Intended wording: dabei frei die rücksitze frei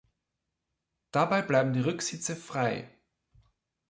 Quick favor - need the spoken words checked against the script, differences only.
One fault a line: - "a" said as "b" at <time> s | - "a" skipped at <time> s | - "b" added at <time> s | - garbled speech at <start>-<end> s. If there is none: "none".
- "frei" said as "bleiben" at 1.4 s